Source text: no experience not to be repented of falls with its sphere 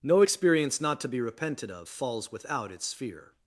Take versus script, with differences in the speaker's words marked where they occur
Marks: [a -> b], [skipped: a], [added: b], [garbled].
no experience not to be repented of falls [with -> without] its sphere